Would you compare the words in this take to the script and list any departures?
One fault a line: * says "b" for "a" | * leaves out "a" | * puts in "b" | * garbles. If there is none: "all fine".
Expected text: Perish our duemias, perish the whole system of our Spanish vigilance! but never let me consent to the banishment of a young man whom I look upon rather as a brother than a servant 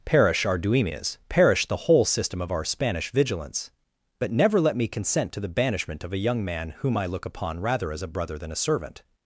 all fine